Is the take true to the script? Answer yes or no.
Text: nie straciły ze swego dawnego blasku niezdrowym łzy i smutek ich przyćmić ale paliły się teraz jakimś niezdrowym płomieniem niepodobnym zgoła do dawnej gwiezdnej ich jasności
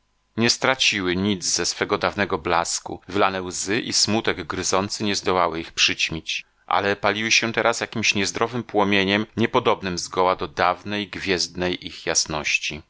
no